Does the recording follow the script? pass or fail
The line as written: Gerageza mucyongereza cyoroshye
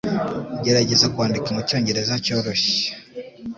fail